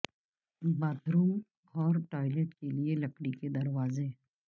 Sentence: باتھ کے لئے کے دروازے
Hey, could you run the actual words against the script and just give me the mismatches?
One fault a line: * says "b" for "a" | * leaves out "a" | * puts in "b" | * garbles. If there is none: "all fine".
* puts in "روم اور ٹوائلٹ"
* puts in "لکڑی"